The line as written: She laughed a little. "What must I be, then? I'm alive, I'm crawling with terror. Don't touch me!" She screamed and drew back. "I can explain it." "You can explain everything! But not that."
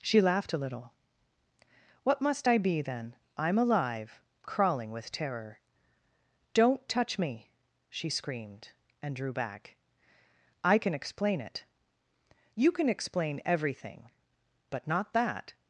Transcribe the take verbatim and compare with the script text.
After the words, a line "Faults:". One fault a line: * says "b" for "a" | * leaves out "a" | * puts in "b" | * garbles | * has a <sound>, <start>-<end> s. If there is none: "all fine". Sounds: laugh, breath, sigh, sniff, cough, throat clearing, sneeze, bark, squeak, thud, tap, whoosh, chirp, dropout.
She laughed a little. "What must I be, then? I'm alive, Crawling with terror. Don't touch me!" She screamed and drew back. "I can explain it." "You can explain everything! But not that."
Faults:
* leaves out "I'm"